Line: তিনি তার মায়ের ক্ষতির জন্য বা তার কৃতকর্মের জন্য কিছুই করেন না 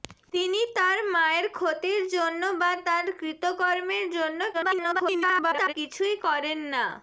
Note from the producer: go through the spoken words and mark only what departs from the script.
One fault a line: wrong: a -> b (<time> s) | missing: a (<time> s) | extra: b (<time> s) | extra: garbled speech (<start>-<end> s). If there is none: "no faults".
extra: garbled speech (4.5-5.7 s)